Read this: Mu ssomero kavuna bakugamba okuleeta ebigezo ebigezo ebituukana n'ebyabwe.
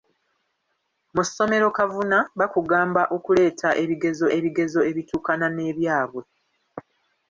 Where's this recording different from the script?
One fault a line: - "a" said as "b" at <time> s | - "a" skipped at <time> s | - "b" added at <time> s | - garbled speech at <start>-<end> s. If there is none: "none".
none